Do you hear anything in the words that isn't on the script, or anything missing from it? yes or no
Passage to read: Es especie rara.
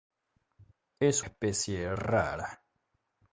no